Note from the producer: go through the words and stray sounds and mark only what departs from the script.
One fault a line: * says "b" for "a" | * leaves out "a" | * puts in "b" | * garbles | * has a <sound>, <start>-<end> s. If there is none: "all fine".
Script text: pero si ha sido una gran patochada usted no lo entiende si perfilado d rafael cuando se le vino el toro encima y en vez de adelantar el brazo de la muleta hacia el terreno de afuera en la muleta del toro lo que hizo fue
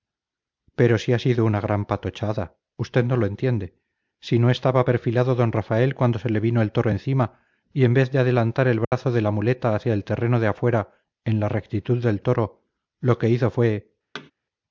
* puts in "no estaba"
* has a dropout, 8.8-8.9 s
* says "rectitud" for "muleta"
* has a thud, 14.1-14.3 s